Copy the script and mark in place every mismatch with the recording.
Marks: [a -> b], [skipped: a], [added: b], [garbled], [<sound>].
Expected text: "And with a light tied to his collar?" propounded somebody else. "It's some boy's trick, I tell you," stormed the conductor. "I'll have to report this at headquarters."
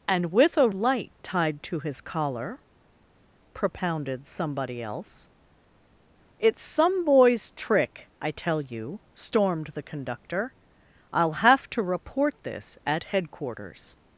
"And with a light tied to his collar?" propounded somebody else. "It's some boy's trick, I tell you," stormed the conductor. "I'll have to report this at headquarters."